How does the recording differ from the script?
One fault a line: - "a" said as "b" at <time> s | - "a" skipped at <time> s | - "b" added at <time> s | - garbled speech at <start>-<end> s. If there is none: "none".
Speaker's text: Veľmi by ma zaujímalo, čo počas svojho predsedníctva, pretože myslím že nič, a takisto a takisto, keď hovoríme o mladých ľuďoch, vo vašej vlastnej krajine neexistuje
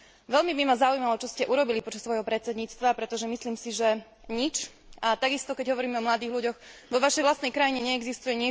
- "ste urobili" added at 1.3 s
- "si" added at 3.6 s
- "a takisto" skipped at 5.6 s